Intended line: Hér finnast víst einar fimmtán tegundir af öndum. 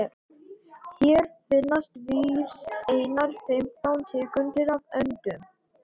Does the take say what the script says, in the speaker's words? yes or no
yes